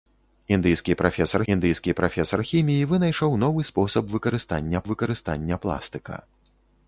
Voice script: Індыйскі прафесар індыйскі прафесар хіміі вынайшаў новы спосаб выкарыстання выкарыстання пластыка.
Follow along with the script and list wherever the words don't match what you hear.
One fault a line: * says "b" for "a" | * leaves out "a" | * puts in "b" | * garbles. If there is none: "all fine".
all fine